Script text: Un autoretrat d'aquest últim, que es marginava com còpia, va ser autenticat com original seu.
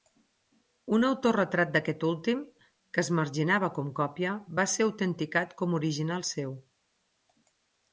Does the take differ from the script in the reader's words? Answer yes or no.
no